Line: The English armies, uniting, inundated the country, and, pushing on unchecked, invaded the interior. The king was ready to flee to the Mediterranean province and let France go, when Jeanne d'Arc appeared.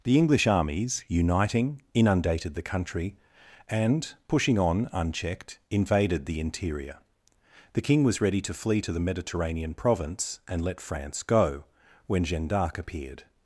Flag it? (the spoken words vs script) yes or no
no